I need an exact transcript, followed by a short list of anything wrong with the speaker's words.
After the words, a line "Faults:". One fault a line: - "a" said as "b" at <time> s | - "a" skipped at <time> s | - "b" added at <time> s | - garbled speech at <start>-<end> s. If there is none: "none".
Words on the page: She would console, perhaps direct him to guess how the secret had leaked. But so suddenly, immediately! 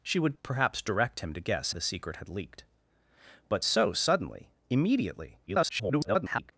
She would perhaps direct him to guess the secret had leaked. But so suddenly, immediately! [garbled]
Faults:
- "console" skipped at 0.3 s
- "how" skipped at 1.7 s
- garbled speech at 5.5-6.5 s